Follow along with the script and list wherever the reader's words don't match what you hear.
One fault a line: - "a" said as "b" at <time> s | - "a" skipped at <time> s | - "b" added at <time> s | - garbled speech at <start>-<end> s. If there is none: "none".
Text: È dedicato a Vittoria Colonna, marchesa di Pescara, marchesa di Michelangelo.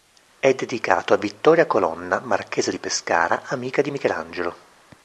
- "marchesa" said as "amica" at 3.5 s